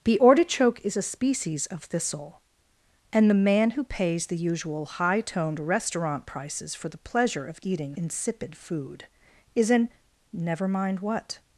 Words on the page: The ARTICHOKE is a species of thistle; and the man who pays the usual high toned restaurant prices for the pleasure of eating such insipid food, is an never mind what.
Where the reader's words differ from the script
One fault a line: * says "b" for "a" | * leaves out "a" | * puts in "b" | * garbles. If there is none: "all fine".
* leaves out "such"